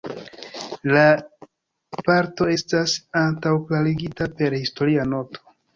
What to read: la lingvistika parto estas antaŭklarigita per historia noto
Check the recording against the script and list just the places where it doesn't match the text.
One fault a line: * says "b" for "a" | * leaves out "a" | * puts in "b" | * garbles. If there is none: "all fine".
* leaves out "lingvistika"